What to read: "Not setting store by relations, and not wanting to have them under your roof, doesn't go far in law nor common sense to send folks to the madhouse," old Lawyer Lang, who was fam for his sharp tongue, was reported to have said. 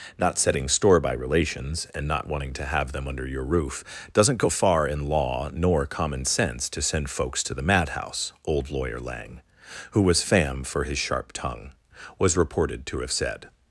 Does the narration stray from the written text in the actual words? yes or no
no